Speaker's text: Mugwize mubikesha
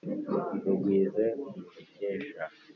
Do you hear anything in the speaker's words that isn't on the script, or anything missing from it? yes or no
no